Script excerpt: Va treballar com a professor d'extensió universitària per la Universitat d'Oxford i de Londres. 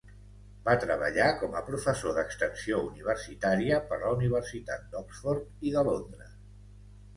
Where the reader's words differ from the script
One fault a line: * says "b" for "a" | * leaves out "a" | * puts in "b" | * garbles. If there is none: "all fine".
all fine